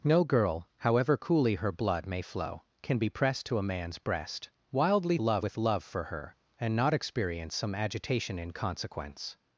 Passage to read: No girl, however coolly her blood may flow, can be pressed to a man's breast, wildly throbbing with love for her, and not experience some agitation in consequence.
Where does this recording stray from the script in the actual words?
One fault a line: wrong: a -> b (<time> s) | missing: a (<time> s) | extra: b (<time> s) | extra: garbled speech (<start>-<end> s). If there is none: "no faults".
wrong: throbbing -> love (5.2 s)